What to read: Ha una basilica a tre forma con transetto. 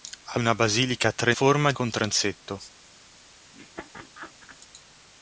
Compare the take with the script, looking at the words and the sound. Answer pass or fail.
fail